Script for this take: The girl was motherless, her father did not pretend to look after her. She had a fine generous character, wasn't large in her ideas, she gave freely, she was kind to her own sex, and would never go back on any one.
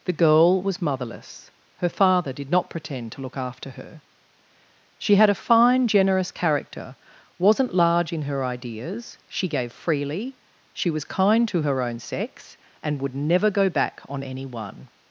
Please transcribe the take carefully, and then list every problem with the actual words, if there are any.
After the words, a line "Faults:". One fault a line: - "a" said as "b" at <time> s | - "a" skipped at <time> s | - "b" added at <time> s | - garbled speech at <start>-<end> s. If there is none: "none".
The girl was motherless, her father did not pretend to look after her. She had a fine generous character, wasn't large in her ideas, she gave freely, she was kind to her own sex, and would never go back on any one.
Faults:
none